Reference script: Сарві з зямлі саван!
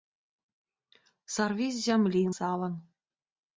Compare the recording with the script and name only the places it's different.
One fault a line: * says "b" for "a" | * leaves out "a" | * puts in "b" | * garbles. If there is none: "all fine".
all fine